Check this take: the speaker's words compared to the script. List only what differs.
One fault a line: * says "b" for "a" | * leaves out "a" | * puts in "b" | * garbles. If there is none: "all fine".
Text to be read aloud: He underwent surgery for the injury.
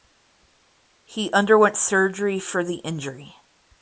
all fine